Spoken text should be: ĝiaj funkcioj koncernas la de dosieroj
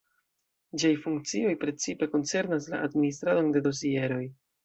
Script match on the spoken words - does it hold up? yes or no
no